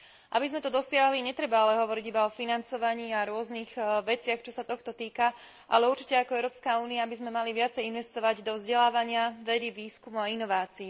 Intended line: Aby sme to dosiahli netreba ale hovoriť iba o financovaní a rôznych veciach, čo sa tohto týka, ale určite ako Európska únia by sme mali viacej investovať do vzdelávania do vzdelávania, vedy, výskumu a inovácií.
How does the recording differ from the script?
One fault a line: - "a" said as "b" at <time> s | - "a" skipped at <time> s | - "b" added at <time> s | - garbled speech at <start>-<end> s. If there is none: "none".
- "do vzdelávania" skipped at 9.3 s